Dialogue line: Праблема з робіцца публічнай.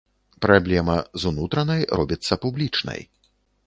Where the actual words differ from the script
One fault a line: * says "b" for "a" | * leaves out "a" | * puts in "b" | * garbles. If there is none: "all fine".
* puts in "унутранай"